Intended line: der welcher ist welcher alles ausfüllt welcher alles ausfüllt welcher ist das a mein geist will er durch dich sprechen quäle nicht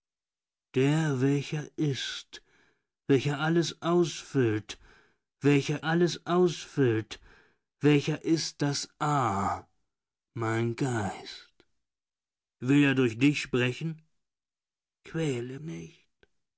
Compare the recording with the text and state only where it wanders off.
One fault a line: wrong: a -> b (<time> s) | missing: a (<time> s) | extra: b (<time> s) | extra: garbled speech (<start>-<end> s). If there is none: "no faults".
no faults